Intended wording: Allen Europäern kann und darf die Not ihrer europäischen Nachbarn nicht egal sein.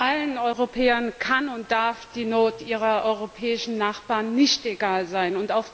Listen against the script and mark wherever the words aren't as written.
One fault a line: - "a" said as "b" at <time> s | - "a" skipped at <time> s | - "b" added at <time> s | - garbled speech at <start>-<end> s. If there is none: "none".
none